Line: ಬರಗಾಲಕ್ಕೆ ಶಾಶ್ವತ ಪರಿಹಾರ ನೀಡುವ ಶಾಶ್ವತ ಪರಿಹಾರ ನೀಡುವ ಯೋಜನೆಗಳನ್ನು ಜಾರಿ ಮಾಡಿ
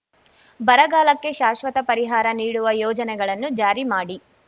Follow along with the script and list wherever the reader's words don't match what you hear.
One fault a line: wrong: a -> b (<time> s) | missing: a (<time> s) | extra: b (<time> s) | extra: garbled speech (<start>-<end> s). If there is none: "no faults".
missing: ಶಾಶ್ವತ ಪರಿಹಾರ ನೀಡುವ (2.7 s)